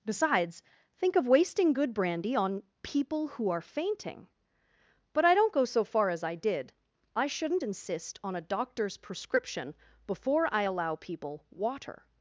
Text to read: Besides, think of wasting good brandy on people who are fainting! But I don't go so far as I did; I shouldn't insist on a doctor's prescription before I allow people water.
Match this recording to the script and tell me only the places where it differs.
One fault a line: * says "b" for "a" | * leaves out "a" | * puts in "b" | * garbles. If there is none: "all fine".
all fine